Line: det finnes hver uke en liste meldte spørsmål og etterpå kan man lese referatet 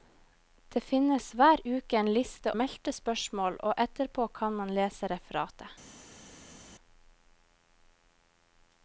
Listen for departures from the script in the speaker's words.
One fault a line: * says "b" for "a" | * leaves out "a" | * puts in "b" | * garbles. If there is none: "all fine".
all fine